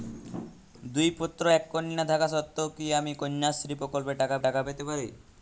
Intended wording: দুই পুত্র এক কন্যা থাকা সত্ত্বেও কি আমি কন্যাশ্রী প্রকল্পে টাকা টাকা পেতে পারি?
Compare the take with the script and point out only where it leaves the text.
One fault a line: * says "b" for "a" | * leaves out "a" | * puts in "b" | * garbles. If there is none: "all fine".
all fine